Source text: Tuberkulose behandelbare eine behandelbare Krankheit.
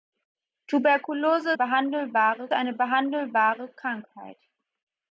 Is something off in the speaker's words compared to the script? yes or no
no